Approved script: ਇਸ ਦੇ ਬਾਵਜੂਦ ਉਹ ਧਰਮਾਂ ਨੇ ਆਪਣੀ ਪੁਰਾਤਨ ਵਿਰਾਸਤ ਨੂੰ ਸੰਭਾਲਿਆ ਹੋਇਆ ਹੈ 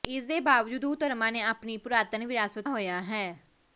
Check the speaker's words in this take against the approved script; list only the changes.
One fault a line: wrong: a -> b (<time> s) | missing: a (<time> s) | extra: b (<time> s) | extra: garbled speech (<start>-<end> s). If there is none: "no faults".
missing: ਨੂੰ ਸੰਭਾਲਿਆ (2.7 s)